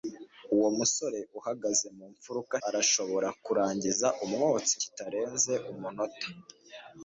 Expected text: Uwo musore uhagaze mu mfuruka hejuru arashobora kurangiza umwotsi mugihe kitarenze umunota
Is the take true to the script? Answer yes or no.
no